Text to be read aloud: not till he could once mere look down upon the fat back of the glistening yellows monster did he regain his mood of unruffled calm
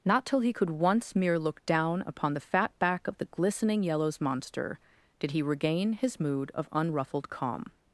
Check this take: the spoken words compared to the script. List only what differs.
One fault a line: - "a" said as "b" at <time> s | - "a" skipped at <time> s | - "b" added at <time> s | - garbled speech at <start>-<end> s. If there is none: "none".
none